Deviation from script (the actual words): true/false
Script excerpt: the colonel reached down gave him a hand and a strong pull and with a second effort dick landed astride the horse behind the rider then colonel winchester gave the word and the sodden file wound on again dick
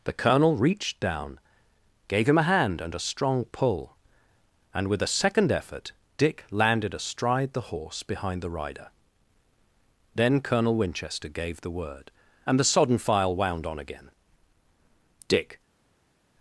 false